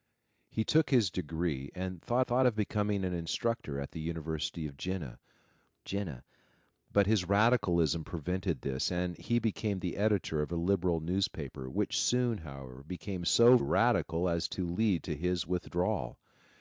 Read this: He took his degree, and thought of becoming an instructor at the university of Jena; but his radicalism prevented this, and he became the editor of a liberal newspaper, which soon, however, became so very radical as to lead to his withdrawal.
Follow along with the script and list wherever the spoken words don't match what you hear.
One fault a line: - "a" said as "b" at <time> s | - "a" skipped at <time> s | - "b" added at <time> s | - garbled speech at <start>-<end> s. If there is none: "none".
- "thought" added at 2.2 s
- "Jena" added at 5.8 s
- "very" skipped at 13.6 s